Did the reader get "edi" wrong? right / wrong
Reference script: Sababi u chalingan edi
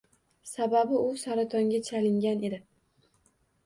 right